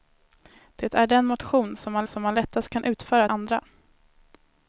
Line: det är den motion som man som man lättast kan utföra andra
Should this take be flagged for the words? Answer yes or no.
no